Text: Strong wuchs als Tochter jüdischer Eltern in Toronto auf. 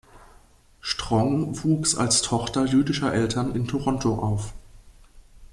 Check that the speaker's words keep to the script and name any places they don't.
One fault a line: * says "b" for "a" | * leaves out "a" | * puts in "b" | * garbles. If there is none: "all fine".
all fine